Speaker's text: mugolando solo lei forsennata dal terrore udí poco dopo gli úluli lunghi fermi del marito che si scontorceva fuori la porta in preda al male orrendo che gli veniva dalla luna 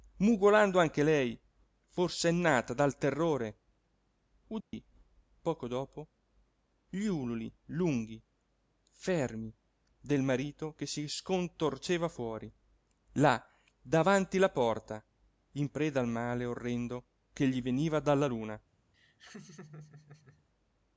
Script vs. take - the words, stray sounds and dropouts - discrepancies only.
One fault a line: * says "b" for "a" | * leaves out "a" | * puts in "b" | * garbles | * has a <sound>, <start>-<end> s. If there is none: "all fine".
* says "anche" for "solo"
* has a dropout, 4.6-4.7 s
* puts in "là davanti"
* has a laugh, 18.9-20.4 s